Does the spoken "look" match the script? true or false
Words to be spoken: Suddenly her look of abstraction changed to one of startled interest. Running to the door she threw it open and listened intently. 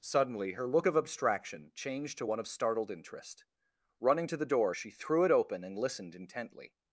true